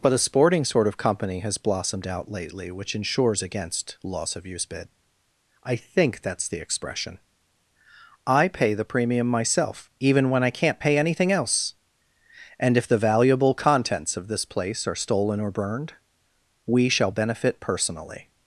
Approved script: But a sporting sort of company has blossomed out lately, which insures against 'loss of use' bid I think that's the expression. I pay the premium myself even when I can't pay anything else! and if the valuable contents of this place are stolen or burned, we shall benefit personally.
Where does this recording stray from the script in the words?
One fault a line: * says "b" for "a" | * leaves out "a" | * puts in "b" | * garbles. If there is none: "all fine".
all fine